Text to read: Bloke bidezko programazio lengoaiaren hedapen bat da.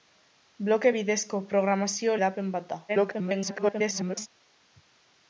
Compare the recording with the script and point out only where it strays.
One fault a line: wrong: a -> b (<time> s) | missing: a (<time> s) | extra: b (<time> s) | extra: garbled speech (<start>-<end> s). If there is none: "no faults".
missing: lengoaiaren (2.2 s)
extra: garbled speech (2.9-4.3 s)